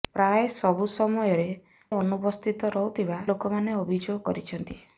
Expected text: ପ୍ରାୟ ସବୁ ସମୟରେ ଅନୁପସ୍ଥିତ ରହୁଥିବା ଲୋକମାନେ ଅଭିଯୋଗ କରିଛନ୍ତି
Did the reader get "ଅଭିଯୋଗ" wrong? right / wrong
right